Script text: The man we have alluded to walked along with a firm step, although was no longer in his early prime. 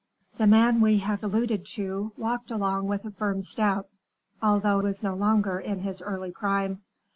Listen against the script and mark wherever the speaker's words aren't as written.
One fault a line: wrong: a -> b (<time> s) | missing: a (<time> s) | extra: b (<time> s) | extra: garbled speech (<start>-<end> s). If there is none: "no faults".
no faults